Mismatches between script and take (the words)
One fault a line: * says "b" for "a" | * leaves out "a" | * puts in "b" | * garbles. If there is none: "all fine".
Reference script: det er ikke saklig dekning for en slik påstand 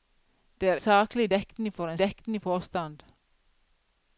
* leaves out "ikke"
* says "dekning" for "slik"